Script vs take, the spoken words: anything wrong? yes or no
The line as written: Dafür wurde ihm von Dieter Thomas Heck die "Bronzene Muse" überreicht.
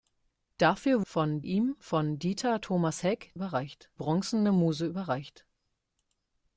yes